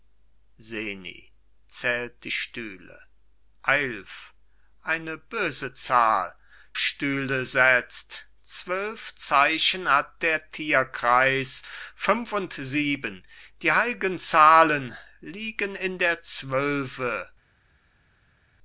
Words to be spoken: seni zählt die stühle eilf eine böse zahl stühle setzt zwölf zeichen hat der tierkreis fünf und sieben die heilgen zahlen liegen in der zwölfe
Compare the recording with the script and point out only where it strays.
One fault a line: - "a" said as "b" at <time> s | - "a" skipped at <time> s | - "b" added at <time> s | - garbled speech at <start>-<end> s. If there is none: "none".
none